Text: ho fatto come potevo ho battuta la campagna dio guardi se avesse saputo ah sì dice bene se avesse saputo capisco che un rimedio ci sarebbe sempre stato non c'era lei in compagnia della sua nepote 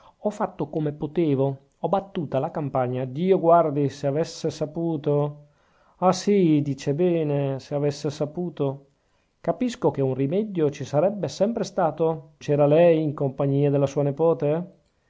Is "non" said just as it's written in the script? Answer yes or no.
no